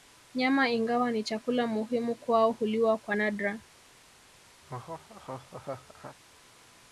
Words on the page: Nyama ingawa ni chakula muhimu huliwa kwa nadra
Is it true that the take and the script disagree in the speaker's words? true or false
true